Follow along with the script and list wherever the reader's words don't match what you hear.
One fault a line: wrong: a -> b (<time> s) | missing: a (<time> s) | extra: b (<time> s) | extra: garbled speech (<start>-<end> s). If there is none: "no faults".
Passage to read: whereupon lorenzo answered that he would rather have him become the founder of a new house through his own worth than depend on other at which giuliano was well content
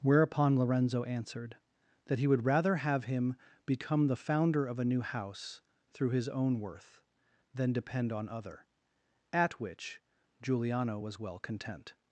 no faults